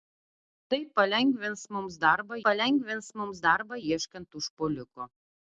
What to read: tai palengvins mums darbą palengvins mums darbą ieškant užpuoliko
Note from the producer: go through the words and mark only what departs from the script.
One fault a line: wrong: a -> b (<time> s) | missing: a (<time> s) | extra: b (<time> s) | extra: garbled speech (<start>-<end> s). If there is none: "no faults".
no faults